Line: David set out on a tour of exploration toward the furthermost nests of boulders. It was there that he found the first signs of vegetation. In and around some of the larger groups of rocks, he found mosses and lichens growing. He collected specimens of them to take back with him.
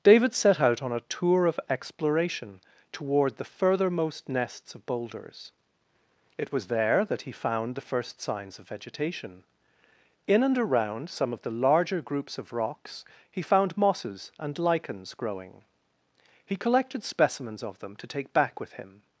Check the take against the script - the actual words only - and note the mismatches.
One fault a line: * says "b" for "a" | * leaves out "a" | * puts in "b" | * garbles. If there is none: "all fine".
all fine